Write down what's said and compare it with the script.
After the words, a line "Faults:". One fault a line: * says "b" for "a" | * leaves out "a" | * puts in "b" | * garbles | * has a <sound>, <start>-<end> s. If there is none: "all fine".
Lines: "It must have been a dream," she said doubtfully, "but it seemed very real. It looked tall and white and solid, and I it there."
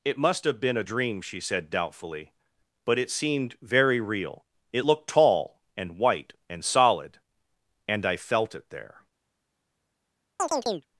"It must have been a dream," she said doubtfully, "but it seemed very real. It looked tall and white and solid, and I felt it there."
Faults:
* puts in "felt"
* has a chirp, 10.4-10.9 s